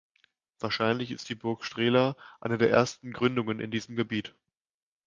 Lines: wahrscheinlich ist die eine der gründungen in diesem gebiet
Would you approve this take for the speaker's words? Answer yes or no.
no